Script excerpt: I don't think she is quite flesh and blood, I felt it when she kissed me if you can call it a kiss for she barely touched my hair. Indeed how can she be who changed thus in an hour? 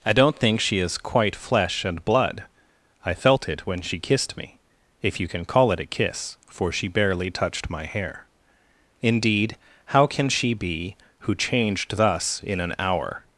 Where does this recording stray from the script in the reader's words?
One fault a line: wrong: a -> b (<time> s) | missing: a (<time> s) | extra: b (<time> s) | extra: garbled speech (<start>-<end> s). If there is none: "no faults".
no faults